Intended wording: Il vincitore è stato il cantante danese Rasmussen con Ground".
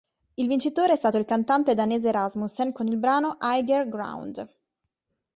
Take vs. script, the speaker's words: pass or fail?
fail